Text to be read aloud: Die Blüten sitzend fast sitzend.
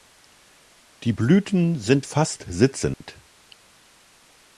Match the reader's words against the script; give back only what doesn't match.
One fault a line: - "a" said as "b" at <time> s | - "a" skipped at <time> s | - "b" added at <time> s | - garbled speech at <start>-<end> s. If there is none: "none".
- "sitzend" said as "sind" at 1.8 s